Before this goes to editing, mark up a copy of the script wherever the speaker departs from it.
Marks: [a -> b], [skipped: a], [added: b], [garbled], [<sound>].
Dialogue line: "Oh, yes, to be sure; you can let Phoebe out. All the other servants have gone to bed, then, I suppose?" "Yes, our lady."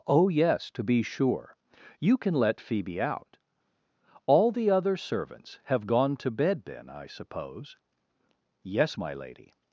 "Oh, yes, to be sure; you can let Phoebe out. All the other servants have gone to bed, then, I suppose?" "Yes, [our -> my] lady."